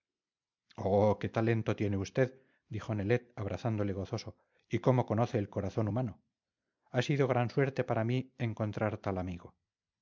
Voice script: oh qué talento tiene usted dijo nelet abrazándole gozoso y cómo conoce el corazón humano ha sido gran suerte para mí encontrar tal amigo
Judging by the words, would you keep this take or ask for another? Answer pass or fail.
pass